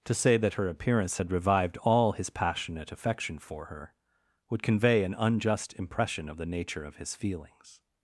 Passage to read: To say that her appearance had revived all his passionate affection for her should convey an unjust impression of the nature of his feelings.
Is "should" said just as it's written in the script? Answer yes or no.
no